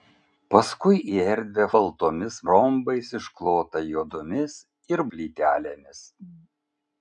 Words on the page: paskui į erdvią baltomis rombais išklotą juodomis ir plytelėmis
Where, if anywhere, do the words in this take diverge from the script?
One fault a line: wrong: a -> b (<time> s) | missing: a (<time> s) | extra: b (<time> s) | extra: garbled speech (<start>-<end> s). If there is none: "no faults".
no faults